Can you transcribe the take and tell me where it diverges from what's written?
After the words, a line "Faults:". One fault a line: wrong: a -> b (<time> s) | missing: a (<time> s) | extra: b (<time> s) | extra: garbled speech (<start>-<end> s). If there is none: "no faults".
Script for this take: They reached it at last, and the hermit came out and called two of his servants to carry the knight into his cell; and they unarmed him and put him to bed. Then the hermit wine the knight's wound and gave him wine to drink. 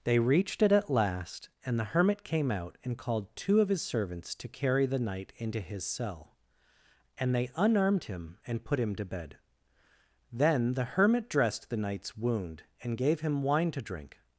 They reached it at last, and the hermit came out and called two of his servants to carry the knight into his cell; and they unarmed him and put him to bed. Then the hermit dressed the knight's wound and gave him wine to drink.
Faults:
wrong: wine -> dressed (11.3 s)